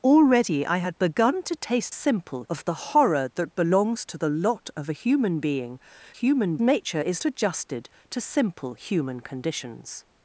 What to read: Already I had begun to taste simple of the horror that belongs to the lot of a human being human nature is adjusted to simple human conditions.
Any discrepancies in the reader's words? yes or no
no